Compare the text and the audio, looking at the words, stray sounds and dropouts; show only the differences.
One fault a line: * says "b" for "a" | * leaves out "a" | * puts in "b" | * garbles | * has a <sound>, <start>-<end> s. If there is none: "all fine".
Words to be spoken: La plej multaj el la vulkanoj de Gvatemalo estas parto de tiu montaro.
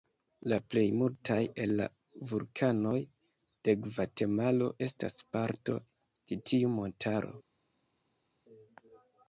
all fine